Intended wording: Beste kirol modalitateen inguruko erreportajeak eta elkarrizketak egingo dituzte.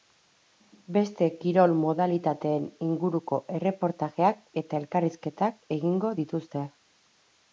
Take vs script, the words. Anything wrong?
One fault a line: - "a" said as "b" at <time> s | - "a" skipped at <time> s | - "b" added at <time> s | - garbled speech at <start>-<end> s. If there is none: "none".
none